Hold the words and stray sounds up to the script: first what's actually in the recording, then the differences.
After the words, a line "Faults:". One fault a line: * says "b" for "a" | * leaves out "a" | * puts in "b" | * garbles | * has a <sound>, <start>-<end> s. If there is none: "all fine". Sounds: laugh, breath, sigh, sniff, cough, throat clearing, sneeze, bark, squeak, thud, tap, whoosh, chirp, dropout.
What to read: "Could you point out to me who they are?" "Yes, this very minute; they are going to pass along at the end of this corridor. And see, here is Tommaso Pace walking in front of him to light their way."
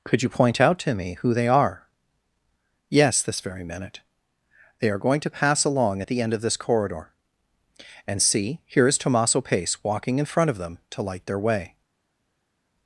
"Could you point out to me who they are?" "Yes, this very minute; they are going to pass along at the end of this corridor. And see, here is Tommaso Pace walking in front of them to light their way."
Faults:
* says "them" for "him"